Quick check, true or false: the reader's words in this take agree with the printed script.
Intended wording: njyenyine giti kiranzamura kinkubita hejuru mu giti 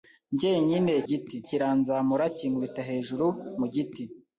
true